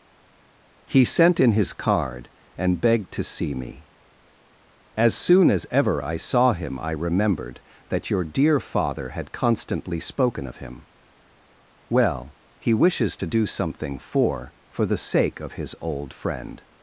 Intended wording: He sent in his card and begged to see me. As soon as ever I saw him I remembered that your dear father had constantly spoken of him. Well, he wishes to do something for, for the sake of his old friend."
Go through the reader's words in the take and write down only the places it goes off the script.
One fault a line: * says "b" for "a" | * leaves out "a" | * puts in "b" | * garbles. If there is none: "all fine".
all fine